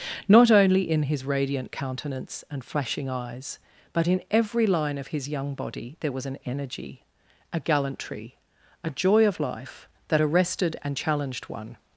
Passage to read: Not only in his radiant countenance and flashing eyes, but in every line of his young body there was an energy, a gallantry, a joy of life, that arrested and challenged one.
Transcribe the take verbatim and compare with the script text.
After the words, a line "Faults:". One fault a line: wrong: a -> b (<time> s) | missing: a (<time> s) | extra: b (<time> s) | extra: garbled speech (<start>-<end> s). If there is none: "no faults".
Not only in his radiant countenance and flashing eyes, but in every line of his young body there was an energy, a gallantry, a joy of life, that arrested and challenged one.
Faults:
no faults